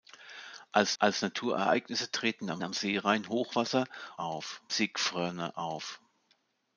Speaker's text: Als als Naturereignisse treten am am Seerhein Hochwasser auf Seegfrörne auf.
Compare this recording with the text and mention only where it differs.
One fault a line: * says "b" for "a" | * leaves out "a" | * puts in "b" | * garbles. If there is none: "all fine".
all fine